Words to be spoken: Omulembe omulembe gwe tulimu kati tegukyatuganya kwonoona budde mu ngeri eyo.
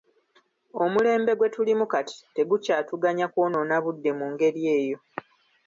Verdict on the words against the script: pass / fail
fail